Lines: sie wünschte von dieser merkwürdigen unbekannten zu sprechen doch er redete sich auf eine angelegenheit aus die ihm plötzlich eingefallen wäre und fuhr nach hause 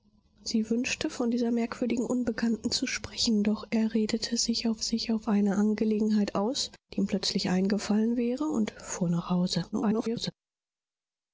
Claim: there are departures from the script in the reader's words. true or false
true